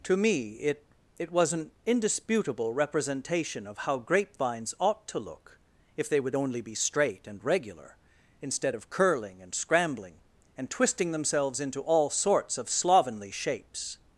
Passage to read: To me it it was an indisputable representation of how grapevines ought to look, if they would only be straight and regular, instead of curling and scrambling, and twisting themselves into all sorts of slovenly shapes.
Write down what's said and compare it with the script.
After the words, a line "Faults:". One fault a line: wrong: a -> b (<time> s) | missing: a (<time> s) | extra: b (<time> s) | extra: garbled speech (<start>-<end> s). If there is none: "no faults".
To me it it was an indisputable representation of how grapevines ought to look, if they would only be straight and regular, instead of curling and scrambling, and twisting themselves into all sorts of slovenly shapes.
Faults:
no faults